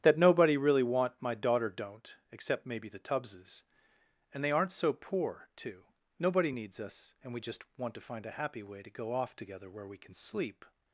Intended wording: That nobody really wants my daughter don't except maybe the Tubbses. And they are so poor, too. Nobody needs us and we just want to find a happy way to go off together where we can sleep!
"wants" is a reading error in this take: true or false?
true